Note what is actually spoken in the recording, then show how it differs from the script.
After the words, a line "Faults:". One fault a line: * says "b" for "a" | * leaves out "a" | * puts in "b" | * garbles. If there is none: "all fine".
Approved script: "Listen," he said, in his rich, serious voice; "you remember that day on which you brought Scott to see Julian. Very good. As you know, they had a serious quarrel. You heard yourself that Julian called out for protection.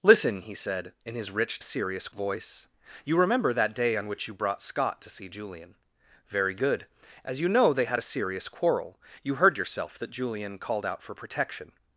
"Listen," he said, in his rich, serious voice; "you remember that day on which you brought Scott to see Julian. Very good. As you know, they had a serious quarrel. You heard yourself that Julian called out for protection.
Faults:
all fine